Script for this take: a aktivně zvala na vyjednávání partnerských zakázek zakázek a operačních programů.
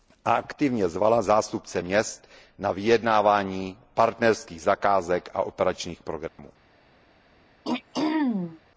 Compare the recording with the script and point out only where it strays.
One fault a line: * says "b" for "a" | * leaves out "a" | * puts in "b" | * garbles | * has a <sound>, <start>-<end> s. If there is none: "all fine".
* puts in "zástupce měst"
* leaves out "zakázek"
* has a dropout, 6.3-6.4 s
* has a throat clearing, 7.6-8.6 s